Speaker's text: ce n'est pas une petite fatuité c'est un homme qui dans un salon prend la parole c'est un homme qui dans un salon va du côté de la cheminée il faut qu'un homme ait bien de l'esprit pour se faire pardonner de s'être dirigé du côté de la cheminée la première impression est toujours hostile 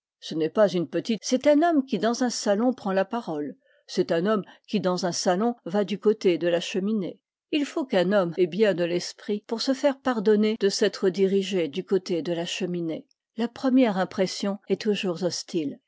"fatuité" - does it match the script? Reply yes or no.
no